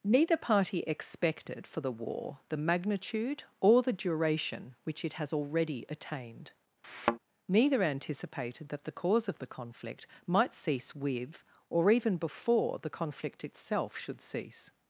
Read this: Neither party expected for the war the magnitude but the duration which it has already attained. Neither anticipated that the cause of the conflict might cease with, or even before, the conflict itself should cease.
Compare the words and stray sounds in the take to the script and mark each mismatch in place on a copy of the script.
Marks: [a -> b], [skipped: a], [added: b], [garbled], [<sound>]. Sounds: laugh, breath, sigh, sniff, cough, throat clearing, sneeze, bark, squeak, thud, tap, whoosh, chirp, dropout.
Neither party expected for the war the magnitude [but -> or] the duration which it has already attained. [thud] Neither anticipated that the cause of the conflict might cease with, or even before, the conflict itself should cease.